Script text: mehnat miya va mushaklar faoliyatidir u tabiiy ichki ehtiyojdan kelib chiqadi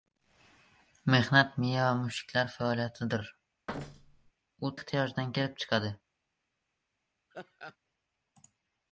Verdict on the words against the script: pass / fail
fail